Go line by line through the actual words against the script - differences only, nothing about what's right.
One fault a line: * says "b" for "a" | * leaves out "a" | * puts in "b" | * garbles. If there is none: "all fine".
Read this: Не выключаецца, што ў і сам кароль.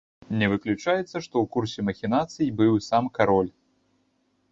* puts in "курсе махінацый быў"